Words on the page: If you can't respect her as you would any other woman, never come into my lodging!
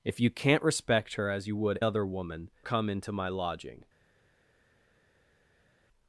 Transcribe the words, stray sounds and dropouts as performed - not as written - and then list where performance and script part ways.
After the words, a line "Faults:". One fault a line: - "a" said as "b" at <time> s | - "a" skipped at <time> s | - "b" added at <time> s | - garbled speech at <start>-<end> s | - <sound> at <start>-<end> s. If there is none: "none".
If you can't respect her as you would other woman, come into my lodging!
Faults:
- "any" skipped at 1.8 s
- "never" skipped at 2.5 s